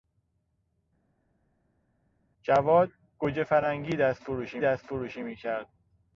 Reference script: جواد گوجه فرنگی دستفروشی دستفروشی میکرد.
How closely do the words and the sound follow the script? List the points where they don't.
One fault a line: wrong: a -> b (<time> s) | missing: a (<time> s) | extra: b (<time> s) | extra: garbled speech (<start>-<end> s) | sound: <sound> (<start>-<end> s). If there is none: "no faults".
no faults